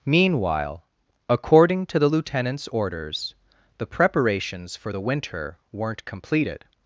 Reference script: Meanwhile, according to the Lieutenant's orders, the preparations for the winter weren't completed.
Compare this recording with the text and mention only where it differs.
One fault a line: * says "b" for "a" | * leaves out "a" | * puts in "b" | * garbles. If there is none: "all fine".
all fine